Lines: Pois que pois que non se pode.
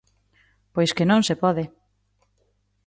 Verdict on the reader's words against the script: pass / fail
fail